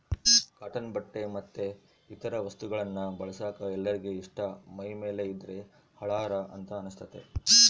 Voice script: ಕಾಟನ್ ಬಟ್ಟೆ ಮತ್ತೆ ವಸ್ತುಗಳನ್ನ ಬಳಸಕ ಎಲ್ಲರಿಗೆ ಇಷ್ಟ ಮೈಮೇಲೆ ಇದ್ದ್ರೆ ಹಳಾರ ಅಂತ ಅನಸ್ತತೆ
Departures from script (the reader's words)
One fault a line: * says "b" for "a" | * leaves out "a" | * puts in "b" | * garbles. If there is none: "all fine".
* puts in "ಇತರ"